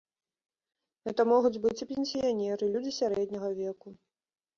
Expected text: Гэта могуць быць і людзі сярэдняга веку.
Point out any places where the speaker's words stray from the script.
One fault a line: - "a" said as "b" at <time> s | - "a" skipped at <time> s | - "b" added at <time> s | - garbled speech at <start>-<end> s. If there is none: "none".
- "пенсіянеры" added at 1.9 s